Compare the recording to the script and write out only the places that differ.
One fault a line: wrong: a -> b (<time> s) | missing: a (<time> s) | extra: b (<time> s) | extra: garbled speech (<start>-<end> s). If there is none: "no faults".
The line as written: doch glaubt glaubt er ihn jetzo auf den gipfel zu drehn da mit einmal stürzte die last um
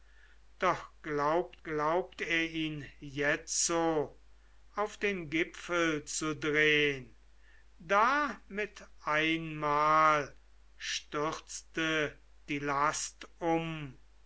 no faults